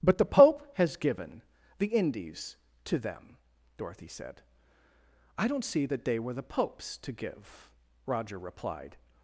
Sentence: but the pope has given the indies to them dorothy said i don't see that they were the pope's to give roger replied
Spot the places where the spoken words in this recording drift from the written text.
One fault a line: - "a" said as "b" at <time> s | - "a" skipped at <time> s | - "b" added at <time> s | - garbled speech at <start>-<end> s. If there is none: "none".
none